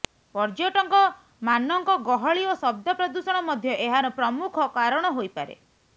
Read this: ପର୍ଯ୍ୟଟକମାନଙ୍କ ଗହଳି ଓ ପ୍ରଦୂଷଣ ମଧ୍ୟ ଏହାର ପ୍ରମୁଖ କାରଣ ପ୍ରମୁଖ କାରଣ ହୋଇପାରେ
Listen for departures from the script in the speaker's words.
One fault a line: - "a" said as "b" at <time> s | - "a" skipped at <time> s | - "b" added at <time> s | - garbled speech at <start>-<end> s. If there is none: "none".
- "ଶବ୍ଦ" added at 2.6 s
- "ପ୍ରମୁଖ କାରଣ" skipped at 5.1 s